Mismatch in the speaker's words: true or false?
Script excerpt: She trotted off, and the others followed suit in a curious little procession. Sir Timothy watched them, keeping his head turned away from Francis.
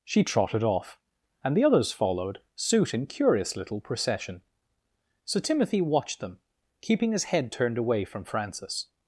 true